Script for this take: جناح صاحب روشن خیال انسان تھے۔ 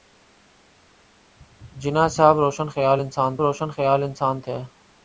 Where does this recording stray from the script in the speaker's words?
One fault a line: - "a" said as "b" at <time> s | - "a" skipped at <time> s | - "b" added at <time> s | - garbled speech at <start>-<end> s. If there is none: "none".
- "روشن خیال انسان" added at 3.4 s